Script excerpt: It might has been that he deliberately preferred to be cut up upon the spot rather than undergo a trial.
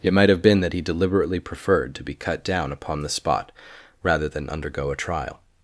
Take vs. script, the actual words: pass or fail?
fail